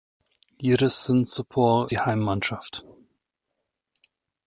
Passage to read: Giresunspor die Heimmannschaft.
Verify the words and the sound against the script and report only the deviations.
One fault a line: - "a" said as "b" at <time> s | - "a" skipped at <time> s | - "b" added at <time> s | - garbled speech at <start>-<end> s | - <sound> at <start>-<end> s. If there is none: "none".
none